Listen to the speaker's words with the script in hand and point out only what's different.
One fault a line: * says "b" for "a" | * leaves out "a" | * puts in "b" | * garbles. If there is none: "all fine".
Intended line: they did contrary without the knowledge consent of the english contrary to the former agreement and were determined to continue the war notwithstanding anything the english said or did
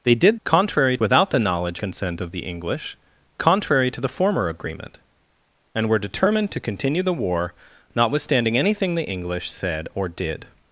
all fine